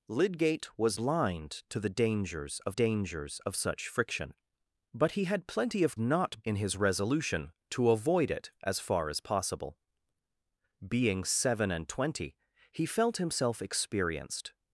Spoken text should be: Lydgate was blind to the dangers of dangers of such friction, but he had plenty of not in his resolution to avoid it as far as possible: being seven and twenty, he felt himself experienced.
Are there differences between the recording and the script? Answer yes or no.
no